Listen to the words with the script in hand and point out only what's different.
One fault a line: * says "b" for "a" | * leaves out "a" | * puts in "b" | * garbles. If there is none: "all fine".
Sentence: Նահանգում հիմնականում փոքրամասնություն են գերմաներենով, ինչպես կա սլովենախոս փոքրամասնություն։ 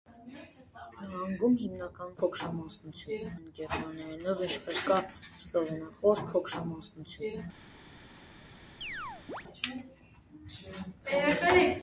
all fine